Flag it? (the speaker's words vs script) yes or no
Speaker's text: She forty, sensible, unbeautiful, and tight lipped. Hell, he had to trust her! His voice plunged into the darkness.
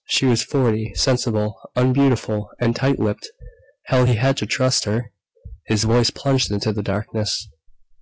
yes